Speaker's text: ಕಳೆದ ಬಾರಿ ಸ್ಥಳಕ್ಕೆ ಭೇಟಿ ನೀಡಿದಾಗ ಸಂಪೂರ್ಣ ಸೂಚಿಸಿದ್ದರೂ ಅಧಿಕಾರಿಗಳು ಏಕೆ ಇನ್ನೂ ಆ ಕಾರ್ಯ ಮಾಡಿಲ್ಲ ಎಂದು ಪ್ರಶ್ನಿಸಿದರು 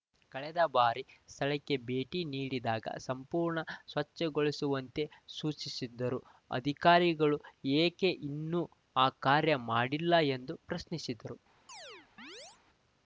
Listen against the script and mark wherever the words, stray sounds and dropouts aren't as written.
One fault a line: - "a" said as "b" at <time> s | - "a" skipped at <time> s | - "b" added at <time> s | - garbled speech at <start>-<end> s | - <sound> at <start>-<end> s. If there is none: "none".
- "ಸ್ವಚ್ಛಗೊಳಿಸುವಂತೆ" added at 3.9 s
- chirp at 11.7-12.6 s